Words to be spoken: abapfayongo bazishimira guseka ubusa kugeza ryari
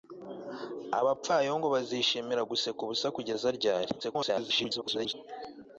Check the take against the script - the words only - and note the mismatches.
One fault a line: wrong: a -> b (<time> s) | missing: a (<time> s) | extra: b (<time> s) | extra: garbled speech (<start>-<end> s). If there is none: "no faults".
extra: garbled speech (4.0-5.1 s)